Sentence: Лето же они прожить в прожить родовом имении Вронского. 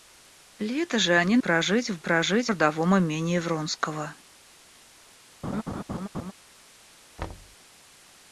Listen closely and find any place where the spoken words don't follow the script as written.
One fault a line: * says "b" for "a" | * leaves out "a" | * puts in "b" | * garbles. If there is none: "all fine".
all fine